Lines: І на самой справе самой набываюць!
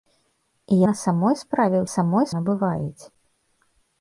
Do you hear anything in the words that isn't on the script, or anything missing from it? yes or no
no